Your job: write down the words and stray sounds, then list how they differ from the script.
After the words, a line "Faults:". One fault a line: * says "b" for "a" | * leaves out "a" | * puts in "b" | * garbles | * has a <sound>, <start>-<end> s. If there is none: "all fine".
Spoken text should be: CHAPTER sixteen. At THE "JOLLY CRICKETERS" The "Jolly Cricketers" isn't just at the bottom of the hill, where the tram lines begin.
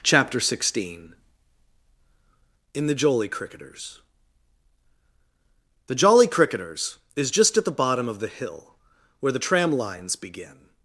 CHAPTER sixteen. IN THE "JOLLY CRICKETERS" The "Jolly Cricketers" is just at the bottom of the hill, where the tram lines begin.
Faults:
* says "IN" for "At"
* says "is" for "isn't"